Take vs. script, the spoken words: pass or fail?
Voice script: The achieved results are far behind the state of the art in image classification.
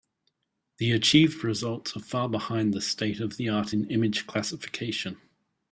pass